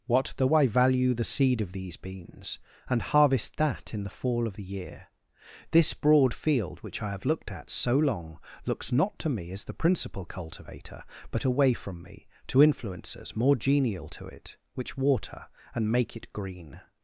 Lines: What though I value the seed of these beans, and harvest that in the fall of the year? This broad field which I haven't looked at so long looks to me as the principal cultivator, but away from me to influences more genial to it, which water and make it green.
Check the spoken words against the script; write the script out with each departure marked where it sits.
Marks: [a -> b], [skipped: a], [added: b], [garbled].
What though I value the seed of these beans, and harvest that in the fall of the year? This broad field which I [haven't -> have] looked at so long looks [added: not] to me as the principal cultivator, but away from me to influences more genial to it, which water and make it green.